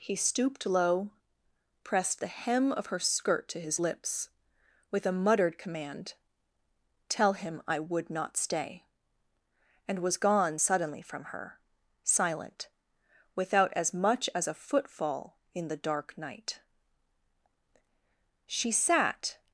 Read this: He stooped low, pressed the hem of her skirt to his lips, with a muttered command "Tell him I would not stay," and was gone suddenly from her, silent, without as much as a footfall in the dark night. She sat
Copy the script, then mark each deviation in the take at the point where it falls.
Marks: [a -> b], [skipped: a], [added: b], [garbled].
He stooped low, pressed the hem of her skirt to his lips, with a muttered command "Tell him I would not stay," and was gone suddenly from her, silent, without as much as a footfall in the dark night. She sat